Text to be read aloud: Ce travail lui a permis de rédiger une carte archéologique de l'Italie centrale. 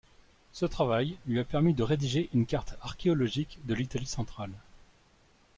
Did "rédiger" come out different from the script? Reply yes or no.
no